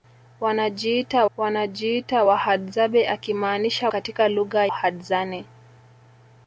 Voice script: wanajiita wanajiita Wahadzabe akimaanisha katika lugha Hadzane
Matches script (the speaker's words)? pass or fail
pass